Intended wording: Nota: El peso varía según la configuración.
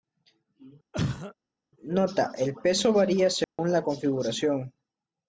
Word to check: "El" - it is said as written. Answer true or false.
true